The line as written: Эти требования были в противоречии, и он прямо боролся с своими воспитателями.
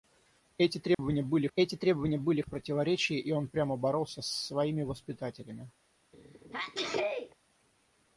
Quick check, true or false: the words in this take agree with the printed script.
false